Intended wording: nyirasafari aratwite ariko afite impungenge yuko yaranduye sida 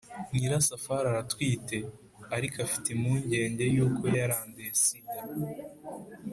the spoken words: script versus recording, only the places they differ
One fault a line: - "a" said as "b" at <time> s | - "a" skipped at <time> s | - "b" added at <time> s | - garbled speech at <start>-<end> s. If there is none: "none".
none